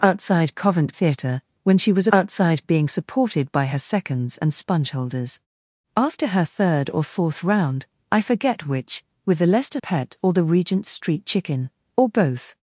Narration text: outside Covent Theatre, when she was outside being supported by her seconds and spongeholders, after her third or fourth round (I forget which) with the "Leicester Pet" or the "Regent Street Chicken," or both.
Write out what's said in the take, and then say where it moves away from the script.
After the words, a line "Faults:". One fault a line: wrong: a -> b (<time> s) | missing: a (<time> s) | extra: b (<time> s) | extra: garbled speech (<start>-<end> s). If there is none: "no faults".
outside Covent Theatre, when she was outside being supported by her seconds and spongeholders, after her third or fourth round (I forget which) with the "Leicester Pet" or the "Regent Street Chicken," or both.
Faults:
no faults